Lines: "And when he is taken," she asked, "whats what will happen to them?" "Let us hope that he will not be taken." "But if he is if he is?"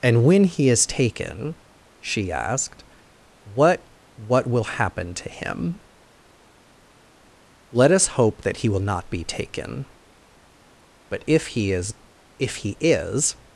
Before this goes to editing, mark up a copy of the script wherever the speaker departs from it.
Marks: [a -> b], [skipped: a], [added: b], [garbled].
"And when he is taken," she asked, ["whats -> what] what will happen to [them?" -> him] "Let us hope that he will not be taken." "But if he is if he is?"